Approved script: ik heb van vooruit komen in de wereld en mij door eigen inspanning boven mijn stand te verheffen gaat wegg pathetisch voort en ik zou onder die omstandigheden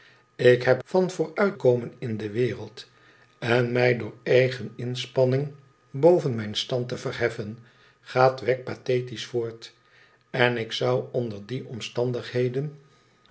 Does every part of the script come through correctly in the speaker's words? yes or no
yes